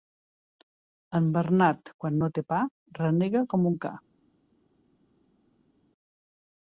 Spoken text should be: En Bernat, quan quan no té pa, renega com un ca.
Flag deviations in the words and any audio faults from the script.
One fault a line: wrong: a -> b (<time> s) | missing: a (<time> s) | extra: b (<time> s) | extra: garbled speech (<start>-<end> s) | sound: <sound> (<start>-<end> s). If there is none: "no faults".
missing: quan (2.2 s)